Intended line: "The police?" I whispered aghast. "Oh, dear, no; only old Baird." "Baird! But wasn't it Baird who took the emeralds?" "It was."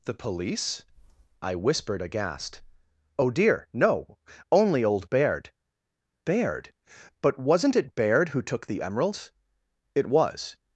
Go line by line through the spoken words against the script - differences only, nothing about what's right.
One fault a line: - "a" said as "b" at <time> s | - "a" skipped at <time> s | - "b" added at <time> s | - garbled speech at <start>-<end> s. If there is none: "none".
none